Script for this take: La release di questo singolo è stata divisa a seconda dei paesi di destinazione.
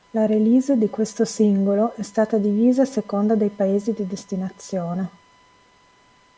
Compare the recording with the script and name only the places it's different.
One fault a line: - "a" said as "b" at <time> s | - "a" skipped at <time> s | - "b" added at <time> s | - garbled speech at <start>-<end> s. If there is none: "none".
none